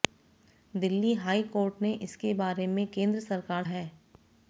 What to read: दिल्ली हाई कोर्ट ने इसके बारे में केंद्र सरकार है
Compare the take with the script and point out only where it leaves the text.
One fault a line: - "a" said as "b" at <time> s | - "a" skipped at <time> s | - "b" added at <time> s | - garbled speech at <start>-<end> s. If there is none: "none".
none